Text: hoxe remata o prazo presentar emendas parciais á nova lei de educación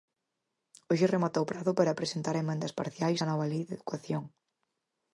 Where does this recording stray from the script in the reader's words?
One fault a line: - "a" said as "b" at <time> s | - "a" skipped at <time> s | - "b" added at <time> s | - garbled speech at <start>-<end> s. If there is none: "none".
- "para" added at 1.8 s